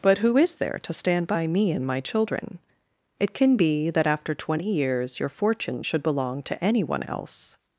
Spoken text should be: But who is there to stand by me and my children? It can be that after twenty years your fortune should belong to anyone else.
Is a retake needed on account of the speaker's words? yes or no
no